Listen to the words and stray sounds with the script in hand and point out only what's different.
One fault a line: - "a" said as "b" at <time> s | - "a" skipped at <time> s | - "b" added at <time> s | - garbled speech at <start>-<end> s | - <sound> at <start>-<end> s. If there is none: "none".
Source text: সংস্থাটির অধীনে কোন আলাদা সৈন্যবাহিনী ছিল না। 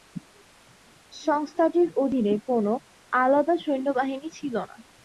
none